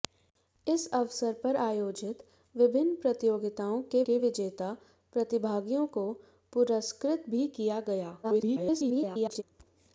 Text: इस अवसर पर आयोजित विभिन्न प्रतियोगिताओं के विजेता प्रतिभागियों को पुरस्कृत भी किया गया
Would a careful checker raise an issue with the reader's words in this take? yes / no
yes